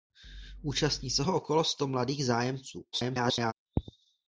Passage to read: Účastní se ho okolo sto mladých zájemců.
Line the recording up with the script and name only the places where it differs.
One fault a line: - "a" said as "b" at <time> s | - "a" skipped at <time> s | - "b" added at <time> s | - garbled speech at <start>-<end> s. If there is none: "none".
- garbled speech at 2.9-3.5 s